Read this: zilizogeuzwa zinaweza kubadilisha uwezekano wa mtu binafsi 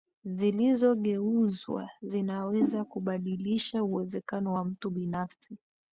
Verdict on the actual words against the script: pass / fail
pass